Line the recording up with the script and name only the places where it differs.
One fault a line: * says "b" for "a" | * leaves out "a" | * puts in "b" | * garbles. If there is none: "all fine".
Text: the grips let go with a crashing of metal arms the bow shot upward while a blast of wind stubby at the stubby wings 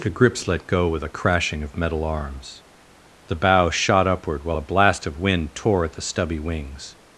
* says "tore" for "stubby"